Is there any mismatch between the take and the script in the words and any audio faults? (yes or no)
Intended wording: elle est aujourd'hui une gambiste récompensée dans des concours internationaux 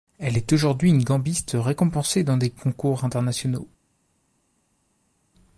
no